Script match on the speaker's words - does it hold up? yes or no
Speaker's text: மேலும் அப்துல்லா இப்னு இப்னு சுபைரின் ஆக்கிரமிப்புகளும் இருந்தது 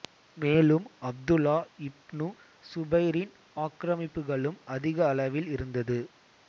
no